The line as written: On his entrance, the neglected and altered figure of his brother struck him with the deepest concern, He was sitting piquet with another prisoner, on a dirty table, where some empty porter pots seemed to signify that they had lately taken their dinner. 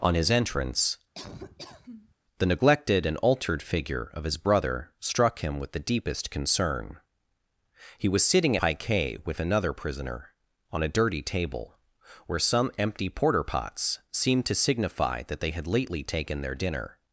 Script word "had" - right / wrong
right